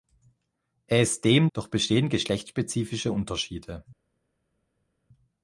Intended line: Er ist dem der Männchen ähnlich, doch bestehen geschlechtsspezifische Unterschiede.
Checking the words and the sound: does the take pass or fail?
fail